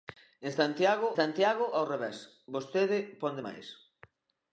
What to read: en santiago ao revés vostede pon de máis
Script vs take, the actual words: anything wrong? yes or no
yes